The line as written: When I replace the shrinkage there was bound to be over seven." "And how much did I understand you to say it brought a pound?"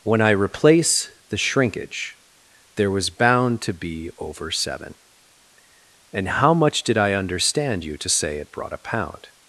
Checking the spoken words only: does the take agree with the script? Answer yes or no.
yes